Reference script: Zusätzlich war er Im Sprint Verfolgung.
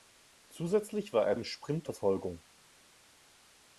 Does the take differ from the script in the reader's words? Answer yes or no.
no